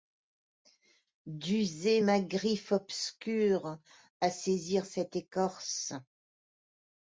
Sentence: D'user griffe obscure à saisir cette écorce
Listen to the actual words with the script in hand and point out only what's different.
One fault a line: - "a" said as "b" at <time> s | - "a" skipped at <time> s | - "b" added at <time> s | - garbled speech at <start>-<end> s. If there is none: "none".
- "ma" added at 2.0 s